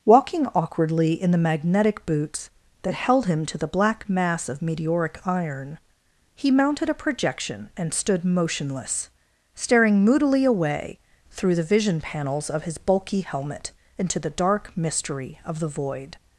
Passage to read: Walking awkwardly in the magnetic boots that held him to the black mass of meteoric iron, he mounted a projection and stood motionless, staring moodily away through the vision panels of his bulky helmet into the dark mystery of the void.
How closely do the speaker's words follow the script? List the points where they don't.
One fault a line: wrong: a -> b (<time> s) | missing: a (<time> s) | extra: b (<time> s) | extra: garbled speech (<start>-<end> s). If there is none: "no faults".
no faults